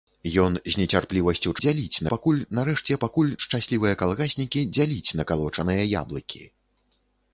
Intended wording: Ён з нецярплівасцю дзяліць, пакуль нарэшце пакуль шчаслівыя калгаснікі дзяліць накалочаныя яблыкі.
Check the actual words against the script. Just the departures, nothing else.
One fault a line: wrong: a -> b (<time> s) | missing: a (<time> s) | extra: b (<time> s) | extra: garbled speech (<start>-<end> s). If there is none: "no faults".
no faults